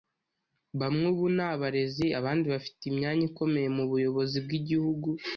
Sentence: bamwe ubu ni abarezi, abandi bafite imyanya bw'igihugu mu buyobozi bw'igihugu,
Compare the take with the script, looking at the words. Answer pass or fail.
fail